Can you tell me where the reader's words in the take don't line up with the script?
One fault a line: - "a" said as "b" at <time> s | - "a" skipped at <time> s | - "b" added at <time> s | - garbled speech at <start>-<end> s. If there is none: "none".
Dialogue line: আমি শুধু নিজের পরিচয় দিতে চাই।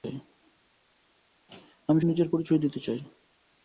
- "শুধু" skipped at 2.0 s